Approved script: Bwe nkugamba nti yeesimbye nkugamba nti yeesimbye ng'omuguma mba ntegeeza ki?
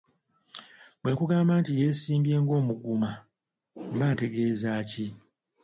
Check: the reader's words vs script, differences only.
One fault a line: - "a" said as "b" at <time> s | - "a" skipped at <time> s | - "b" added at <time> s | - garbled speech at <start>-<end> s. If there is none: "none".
- "nkugamba nti yeesimbye" skipped at 2.3 s